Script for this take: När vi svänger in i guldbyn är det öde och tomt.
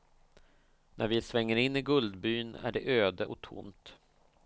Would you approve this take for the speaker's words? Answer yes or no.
yes